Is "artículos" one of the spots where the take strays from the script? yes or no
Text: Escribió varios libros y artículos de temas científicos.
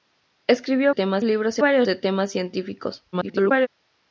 yes